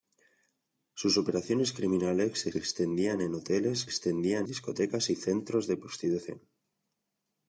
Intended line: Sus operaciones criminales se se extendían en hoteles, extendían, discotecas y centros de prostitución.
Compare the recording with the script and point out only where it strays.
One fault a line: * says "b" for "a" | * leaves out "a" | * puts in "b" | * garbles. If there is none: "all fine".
all fine